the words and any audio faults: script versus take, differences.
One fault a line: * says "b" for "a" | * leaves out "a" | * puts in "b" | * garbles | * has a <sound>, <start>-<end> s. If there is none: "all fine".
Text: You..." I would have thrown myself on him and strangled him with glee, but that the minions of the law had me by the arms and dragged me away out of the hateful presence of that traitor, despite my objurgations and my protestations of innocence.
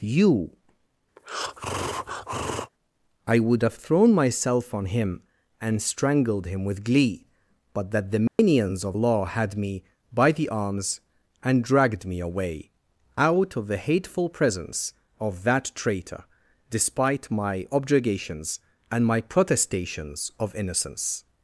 * has a breath, 1.2-2.7 s
* has a dropout, 8.3-8.4 s
* leaves out "the"